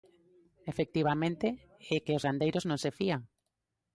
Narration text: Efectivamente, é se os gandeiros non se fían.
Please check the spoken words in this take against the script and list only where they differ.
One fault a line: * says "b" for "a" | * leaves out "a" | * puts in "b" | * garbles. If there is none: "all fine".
* says "que" for "se"